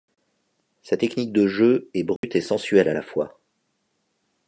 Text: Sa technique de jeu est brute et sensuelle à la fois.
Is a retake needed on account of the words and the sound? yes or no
yes